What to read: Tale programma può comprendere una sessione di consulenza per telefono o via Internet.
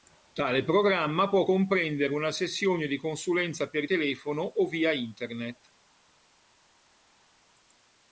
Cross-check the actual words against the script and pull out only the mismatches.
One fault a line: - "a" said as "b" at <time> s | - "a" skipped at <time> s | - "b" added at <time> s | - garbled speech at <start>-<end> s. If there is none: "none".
none